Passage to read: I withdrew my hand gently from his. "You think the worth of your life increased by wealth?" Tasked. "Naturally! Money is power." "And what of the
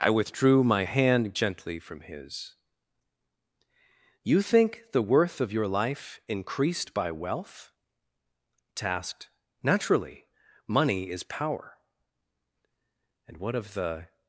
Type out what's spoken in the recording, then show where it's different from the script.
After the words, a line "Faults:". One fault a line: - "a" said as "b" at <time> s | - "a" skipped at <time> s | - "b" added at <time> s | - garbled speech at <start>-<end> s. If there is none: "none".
I withdrew my hand gently from his. "You think the worth of your life increased by wealth?" Tasked. "Naturally! Money is power." "And what of the
Faults:
none